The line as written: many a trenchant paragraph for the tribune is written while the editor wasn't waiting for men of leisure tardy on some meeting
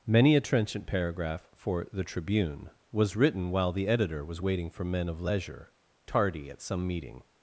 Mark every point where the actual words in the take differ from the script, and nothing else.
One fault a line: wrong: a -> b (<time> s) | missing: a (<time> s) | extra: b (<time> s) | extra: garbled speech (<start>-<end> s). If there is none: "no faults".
wrong: is -> was (2.9 s)
wrong: wasn't -> was (4.2 s)
wrong: on -> at (6.5 s)